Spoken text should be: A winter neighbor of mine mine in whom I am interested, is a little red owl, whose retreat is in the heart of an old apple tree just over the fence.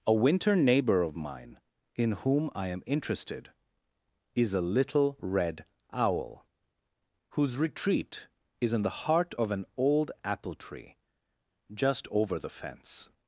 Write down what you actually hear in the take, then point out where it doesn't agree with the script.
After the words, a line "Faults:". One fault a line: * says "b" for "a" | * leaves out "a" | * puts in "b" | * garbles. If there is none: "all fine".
A winter neighbor of mine in whom I am interested, is a little red owl, whose retreat is in the heart of an old apple tree just over the fence.
Faults:
* leaves out "mine"